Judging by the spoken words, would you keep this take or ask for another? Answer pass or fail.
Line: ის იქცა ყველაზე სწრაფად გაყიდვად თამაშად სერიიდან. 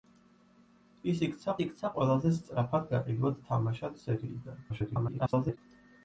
fail